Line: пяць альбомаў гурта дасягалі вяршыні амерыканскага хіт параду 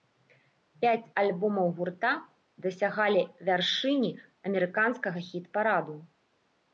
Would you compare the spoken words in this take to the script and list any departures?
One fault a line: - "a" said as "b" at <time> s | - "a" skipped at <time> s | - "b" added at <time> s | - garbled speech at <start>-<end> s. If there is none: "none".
none